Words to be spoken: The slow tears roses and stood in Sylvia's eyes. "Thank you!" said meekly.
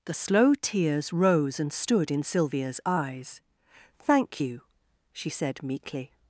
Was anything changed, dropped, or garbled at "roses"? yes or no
yes